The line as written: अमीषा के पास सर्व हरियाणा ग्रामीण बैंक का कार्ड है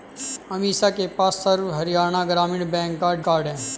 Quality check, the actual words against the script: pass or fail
pass